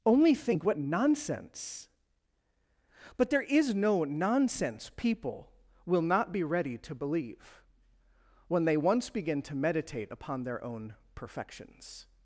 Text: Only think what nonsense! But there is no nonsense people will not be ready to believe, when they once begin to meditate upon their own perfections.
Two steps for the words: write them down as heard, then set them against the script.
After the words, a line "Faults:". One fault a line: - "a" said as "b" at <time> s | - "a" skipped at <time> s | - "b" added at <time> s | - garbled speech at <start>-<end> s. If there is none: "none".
Only think what nonsense! But there is no nonsense people will not be ready to believe, when they once begin to meditate upon their own perfections.
Faults:
none